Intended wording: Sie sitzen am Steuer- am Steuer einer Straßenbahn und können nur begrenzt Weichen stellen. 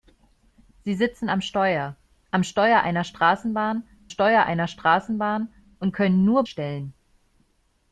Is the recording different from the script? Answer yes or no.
yes